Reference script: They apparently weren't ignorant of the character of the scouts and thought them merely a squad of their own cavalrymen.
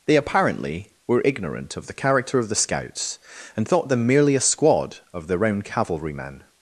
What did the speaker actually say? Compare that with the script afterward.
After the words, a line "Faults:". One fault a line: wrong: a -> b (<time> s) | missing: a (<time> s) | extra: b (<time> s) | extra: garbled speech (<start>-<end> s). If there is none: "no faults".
They apparently were ignorant of the character of the scouts and thought them merely a squad of their own cavalrymen.
Faults:
wrong: weren't -> were (1.1 s)